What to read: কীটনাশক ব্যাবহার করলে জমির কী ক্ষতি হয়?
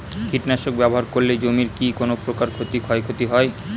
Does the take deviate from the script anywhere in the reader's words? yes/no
yes